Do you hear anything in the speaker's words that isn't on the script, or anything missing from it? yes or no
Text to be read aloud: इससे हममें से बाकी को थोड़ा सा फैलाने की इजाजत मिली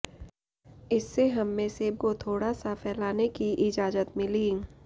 yes